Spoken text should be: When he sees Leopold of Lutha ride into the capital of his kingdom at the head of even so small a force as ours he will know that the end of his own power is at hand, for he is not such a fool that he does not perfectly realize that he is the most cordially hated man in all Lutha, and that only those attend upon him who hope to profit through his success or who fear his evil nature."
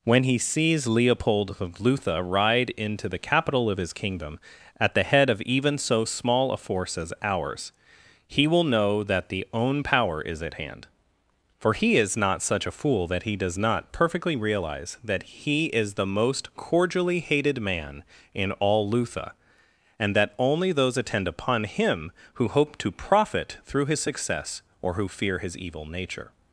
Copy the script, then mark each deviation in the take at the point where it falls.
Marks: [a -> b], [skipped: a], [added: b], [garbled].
When he sees Leopold of Lutha ride into the capital of his kingdom at the head of even so small a force as ours he will know that the [skipped: end of his] own power is at hand, for he is not such a fool that he does not perfectly realize that he is the most cordially hated man in all Lutha, and that only those attend upon him who hope to profit through his success or who fear his evil nature."